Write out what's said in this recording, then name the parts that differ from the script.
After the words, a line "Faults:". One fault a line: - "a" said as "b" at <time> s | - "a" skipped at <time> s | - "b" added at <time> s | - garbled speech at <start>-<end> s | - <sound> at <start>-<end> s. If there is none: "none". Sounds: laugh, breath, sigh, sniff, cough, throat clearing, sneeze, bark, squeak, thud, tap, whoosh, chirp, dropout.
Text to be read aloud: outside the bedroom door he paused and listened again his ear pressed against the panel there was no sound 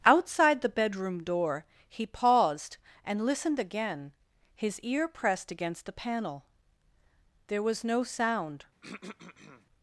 outside the bedroom door he paused and listened again his ear pressed against the panel there was no sound
Faults:
- throat clearing at 8.8-9.7 s